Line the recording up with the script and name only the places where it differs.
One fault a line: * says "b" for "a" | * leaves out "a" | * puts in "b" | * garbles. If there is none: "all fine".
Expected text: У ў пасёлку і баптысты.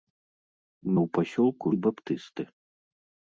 all fine